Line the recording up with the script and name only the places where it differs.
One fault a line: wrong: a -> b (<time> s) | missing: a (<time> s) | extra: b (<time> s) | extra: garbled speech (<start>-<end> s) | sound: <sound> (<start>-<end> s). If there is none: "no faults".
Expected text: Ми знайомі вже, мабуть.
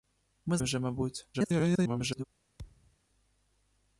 missing: знайомі (0.6 s)
extra: garbled speech (1.3-2.2 s)
sound: thud (2.6-3.0 s)